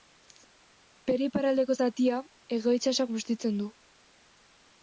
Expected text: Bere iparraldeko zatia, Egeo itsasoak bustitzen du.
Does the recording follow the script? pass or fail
pass